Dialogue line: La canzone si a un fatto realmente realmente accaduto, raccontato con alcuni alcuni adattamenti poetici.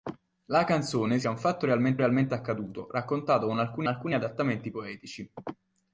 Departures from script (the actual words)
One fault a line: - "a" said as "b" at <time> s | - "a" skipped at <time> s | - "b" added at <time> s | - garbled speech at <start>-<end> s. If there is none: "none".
none